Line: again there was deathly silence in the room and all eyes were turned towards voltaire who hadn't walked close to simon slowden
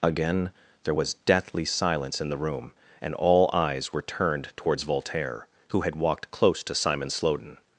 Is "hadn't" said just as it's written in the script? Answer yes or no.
no